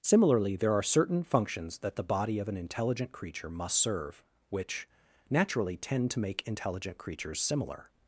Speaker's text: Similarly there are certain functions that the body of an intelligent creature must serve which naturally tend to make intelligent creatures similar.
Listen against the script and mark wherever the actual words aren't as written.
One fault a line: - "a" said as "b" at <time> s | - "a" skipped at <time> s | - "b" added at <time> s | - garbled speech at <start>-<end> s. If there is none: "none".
none